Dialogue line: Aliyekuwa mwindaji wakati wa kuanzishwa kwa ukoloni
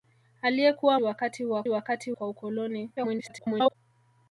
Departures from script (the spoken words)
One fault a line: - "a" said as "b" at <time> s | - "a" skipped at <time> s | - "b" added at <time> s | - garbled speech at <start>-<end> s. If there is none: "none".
- "mwindaji" skipped at 1.0 s
- "kuanzishwa" said as "wakati" at 1.7 s
- garbled speech at 3.0-3.8 s